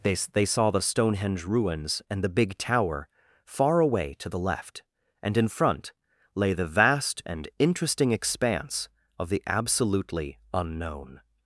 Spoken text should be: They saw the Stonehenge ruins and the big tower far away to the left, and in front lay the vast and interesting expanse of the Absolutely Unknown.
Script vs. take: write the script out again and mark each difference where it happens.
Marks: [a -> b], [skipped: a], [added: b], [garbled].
They [added: they] saw the Stonehenge ruins and the big tower far away to the left, and in front lay the vast and interesting expanse of the Absolutely Unknown.